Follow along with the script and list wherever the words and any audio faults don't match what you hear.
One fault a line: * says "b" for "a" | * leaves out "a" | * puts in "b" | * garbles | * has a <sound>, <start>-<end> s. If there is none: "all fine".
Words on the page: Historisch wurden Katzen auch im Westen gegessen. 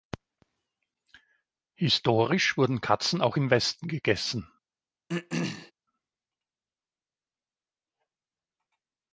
* has a throat clearing, 5.1-5.7 s